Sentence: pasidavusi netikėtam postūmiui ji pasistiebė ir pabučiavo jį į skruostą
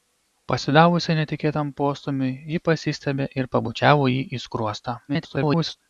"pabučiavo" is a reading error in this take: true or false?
false